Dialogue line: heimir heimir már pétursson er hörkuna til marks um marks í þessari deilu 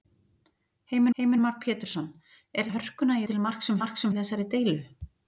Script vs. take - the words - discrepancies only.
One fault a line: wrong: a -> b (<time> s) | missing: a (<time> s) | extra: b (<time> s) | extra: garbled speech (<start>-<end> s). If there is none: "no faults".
no faults